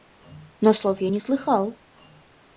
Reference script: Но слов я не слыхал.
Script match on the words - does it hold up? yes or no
yes